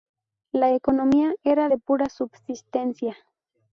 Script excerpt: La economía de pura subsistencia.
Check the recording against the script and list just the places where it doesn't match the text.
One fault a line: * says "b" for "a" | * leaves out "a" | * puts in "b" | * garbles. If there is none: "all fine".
* puts in "era"